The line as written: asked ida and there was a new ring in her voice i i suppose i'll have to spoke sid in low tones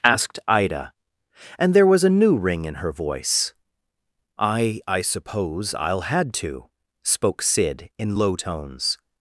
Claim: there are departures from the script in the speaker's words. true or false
true